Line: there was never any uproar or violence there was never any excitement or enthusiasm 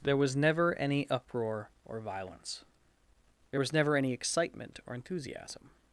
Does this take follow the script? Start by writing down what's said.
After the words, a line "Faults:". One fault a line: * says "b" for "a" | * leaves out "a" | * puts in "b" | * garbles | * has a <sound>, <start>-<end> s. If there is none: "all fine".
there was never any uproar or violence there was never any excitement or enthusiasm
Faults:
all fine